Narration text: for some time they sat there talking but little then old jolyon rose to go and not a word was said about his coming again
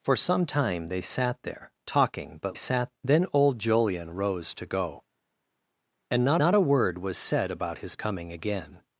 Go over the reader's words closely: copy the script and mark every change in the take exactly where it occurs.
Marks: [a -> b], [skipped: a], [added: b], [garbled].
for some time they sat there talking but [little -> sat] then old jolyon rose to go and not [added: not] a word was said about his coming again